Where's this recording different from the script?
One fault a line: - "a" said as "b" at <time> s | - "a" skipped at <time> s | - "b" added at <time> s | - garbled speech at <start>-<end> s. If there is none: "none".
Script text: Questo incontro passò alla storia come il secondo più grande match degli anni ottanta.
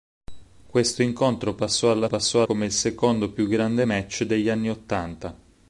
- "storia" said as "passò" at 2.0 s